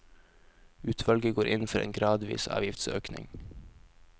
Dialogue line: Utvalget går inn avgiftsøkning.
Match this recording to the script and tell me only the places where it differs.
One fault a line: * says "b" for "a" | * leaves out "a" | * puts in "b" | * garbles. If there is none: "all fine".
* puts in "for en gradvis"